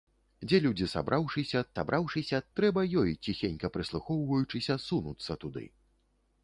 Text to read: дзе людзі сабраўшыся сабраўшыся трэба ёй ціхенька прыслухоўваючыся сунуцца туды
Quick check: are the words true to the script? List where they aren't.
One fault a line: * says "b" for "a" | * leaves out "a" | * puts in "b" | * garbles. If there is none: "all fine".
all fine